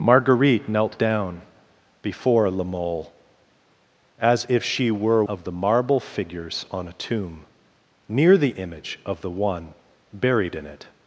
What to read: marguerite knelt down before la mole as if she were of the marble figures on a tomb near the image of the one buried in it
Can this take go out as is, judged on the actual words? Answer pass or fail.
pass